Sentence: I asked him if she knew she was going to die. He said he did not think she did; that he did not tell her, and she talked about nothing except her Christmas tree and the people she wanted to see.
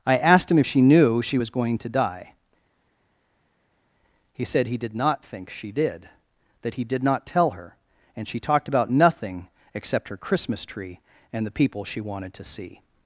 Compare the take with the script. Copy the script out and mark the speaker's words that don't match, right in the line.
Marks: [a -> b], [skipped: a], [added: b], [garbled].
I asked him if she knew she was going to die. He said he did not think she did; that he did not tell her, and she talked about nothing except her Christmas tree and the people she wanted to see.